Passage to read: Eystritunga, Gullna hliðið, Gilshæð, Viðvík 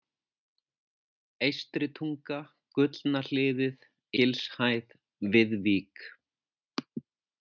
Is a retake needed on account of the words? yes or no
no